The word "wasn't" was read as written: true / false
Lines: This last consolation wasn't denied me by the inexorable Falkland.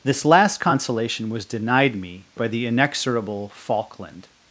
false